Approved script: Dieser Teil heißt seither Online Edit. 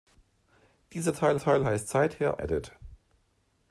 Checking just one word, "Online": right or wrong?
wrong